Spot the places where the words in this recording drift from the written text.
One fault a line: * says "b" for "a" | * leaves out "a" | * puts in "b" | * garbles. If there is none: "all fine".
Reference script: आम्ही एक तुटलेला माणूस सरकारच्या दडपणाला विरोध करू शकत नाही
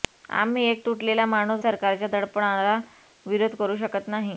all fine